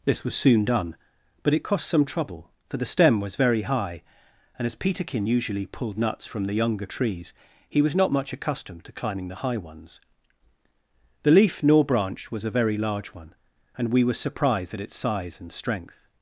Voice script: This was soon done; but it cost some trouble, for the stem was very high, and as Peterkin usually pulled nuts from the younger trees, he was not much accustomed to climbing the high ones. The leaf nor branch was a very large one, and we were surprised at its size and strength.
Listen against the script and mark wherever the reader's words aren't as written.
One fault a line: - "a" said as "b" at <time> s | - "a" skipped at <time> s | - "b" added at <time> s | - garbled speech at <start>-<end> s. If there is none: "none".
none